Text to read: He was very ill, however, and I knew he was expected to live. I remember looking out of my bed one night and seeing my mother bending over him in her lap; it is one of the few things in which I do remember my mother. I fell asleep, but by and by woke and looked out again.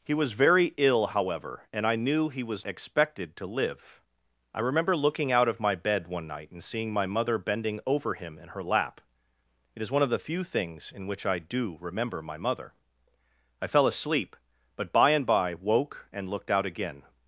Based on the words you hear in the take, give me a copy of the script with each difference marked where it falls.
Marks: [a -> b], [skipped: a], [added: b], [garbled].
He was very ill, however, and I knew he was expected to live. I remember looking out of my bed one night and seeing my mother bending over him in her lap; it is one of the few things in which I do remember my mother. I fell asleep, but by and by woke and looked out again.